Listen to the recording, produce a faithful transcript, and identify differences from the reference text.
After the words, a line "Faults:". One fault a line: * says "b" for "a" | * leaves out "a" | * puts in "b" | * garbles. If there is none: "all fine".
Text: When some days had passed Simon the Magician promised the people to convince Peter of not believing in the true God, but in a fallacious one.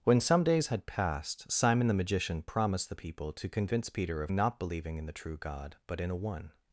When some days had passed Simon the Magician promised the people to convince Peter of not believing in the true God, but in a one.
Faults:
* leaves out "fallacious"